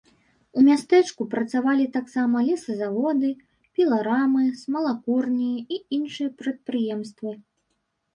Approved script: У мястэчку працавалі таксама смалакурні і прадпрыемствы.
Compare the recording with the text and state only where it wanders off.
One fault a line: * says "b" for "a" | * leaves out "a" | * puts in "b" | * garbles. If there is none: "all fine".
* puts in "лесазаводы піларамы"
* puts in "іншыя"